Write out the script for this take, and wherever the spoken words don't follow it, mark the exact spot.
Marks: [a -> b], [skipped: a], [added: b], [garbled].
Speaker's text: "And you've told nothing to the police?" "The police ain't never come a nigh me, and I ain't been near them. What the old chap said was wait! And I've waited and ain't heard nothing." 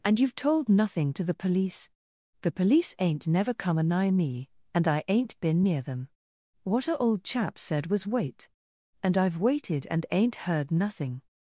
"And you've told nothing to the police?" "The police ain't never come a nigh me, and I ain't been near them. What [the -> a] old chap said was wait! And I've waited and ain't heard nothing."